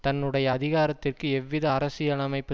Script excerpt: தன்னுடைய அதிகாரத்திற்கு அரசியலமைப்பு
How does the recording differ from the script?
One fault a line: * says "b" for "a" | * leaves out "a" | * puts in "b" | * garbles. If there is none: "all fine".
* puts in "எவ்வித"